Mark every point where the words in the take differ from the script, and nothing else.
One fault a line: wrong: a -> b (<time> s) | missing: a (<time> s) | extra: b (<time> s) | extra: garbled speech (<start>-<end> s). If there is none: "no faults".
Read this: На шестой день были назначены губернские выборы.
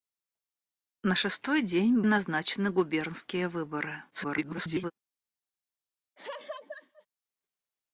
missing: были (2.0 s)
extra: garbled speech (4.1-4.9 s)